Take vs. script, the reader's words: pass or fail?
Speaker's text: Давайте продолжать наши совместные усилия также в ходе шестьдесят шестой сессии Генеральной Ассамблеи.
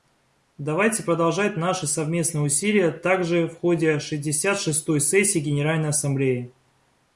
pass